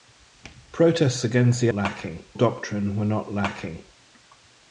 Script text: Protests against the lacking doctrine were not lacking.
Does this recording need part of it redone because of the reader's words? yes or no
no